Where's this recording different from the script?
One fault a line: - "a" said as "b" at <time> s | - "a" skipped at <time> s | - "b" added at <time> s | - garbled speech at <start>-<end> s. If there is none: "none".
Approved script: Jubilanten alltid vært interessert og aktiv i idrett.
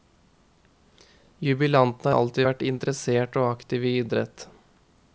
none